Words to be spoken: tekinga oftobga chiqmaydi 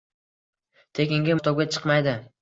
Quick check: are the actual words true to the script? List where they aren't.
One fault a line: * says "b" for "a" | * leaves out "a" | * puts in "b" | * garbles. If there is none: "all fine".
all fine